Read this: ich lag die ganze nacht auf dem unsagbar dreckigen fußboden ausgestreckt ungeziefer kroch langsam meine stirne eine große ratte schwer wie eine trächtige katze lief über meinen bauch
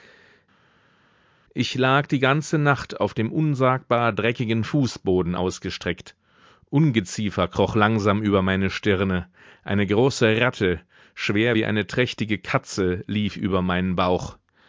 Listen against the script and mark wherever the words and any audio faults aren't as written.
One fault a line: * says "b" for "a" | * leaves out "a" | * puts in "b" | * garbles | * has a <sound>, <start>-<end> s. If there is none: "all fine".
* puts in "über"